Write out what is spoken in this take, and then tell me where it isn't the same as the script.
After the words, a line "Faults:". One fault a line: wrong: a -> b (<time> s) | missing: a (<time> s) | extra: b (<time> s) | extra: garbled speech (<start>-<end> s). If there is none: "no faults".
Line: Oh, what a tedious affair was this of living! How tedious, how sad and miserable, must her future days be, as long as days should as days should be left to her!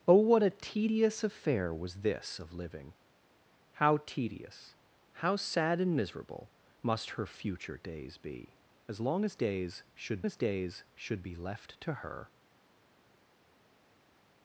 Oh, what a tedious affair was this of living! How tedious, how sad and miserable, must her future days be, as long as days should as days should be left to her!
Faults:
no faults